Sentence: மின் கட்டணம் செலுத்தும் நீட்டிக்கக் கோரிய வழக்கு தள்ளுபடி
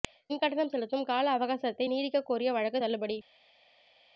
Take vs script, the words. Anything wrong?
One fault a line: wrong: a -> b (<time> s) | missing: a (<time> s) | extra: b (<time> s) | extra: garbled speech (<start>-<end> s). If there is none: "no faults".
extra: கால அவகாசத்தை (1.1 s)